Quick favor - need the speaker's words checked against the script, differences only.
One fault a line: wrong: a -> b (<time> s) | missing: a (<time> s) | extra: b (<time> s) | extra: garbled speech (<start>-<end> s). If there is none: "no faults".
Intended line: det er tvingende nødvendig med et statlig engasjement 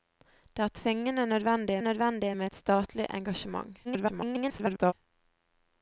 extra: nødvendig (1.8 s)
extra: garbled speech (3.8-4.9 s)